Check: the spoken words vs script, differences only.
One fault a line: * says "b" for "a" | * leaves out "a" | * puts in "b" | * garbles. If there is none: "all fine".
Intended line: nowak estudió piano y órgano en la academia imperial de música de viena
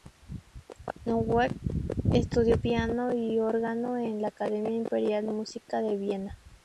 * leaves out "de"